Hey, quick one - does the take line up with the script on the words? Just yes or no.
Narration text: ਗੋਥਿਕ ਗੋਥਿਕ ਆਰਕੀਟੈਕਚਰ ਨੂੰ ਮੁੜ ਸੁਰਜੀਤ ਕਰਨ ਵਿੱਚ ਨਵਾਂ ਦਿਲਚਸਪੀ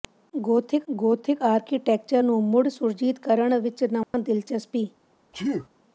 yes